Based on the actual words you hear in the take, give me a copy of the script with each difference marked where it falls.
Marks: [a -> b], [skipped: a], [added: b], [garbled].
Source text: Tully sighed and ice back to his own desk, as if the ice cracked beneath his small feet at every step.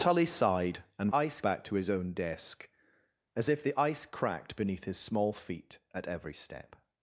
Tully sighed and ice back to his own desk, as if the ice cracked beneath his small feet at every step.